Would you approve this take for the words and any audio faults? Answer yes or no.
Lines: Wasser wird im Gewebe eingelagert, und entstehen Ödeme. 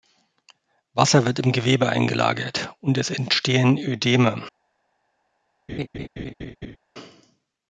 no